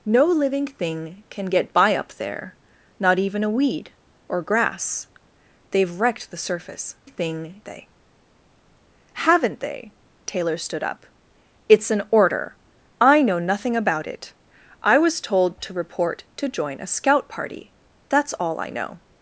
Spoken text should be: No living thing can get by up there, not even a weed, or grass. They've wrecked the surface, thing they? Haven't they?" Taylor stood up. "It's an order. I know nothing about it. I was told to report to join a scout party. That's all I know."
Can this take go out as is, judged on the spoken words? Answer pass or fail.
pass